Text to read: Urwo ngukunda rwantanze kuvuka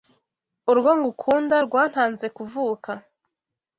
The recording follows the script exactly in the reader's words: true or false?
true